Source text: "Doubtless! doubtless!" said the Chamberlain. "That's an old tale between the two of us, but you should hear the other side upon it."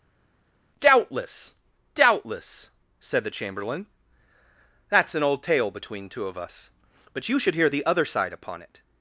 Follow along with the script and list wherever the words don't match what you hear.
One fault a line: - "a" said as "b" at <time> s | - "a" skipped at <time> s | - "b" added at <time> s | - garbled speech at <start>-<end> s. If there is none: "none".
- "the" skipped at 6.1 s